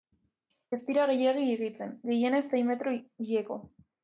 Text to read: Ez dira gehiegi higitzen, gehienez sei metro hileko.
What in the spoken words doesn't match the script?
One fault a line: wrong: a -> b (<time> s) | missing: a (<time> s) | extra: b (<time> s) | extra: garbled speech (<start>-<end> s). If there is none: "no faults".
no faults